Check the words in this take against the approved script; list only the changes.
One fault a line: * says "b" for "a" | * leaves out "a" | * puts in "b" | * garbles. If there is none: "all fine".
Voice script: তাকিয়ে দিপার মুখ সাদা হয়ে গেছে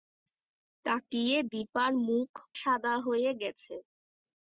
all fine